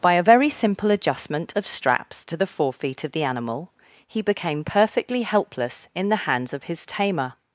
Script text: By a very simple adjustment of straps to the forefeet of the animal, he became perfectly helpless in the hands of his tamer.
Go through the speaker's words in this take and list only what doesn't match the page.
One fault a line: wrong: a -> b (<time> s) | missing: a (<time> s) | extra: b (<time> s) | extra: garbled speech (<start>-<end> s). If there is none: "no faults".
no faults